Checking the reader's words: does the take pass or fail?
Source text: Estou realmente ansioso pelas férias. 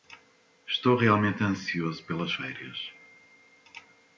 pass